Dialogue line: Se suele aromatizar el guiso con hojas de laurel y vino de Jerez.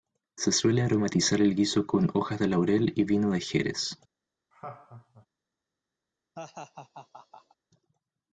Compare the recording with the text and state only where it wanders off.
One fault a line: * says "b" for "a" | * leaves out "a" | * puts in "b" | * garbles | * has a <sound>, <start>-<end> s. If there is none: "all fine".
* has a laugh, 4.5-5.3 s
* has a laugh, 6.4-7.6 s